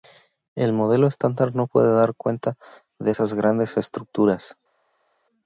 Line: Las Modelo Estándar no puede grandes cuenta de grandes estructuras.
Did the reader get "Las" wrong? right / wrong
wrong